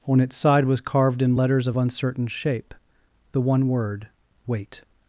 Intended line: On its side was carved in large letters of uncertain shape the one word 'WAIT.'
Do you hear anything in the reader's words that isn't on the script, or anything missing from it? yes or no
yes